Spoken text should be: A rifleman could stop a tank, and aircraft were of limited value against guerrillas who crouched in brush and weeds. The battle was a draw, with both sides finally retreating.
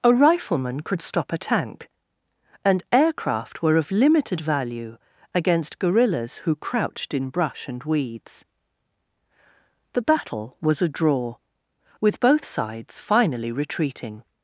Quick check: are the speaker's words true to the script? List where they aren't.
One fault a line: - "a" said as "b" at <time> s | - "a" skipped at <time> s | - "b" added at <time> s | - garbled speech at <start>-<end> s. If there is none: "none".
none